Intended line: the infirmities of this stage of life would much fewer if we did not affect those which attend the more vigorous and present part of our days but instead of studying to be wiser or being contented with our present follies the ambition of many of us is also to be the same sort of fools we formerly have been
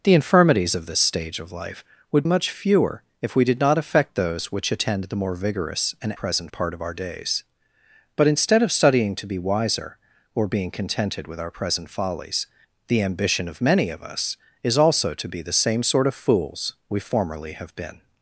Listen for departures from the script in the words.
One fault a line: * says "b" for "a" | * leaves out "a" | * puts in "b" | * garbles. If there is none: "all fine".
all fine